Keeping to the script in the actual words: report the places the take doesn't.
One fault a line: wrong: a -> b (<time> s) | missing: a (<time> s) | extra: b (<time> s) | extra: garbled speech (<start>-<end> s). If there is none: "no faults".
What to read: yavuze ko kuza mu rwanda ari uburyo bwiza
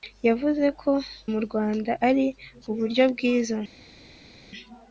missing: kuza (0.9 s)